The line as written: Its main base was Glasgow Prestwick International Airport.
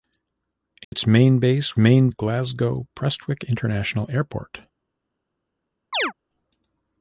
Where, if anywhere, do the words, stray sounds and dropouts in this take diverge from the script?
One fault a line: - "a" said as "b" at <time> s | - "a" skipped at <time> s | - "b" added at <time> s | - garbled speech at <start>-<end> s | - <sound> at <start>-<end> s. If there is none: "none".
- dropout at 0.8-0.9 s
- "was" said as "main" at 1.8 s
- chirp at 5.9-6.1 s